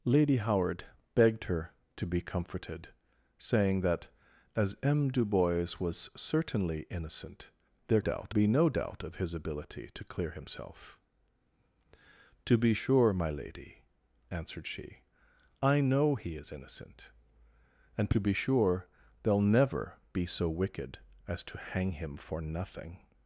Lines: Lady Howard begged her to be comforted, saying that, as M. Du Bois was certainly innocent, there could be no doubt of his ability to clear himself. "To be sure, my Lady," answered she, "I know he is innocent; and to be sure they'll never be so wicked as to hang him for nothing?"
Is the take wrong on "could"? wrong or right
wrong